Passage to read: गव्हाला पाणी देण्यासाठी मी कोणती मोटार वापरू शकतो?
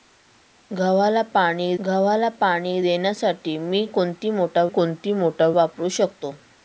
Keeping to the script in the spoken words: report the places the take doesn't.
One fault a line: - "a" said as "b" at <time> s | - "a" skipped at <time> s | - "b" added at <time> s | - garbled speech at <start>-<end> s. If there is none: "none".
- "गव्हाला पाणी" added at 1.8 s
- "कोणती मोटार" added at 4.7 s